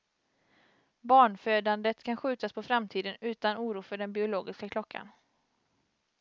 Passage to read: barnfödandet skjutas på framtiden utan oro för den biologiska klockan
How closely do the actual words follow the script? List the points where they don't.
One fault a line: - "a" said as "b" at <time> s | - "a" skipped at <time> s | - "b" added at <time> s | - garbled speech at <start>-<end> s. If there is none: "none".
- "kan" added at 2.0 s